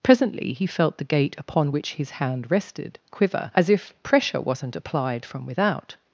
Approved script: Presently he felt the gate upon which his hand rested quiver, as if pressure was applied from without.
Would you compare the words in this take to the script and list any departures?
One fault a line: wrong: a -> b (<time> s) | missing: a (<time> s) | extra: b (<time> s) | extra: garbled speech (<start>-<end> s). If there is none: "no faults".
wrong: was -> wasn't (4.4 s)